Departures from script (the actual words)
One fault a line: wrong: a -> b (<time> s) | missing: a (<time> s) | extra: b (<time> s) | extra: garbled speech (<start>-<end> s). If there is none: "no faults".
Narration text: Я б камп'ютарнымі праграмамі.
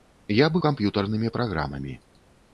no faults